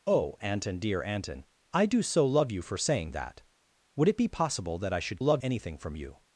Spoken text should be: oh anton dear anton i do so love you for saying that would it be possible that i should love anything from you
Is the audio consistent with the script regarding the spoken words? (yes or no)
yes